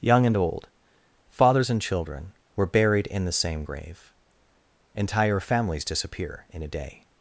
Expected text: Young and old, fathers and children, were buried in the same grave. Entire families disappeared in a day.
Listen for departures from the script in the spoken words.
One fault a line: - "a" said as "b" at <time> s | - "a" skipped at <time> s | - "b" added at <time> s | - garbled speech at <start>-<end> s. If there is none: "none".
- "disappeared" said as "disappear" at 5.8 s